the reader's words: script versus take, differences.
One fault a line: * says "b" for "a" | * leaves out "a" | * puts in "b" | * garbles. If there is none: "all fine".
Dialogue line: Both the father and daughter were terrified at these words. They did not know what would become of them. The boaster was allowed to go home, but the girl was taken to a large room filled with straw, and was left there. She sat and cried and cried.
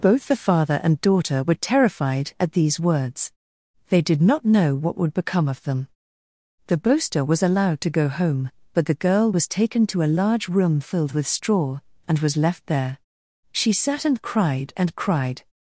all fine